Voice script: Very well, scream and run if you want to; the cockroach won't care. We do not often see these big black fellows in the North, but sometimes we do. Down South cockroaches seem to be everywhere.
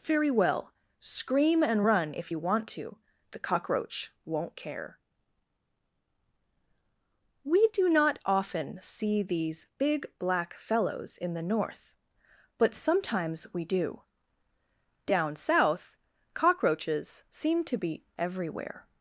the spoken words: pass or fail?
pass